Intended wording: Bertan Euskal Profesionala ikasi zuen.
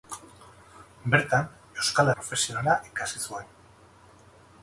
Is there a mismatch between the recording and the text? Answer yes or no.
no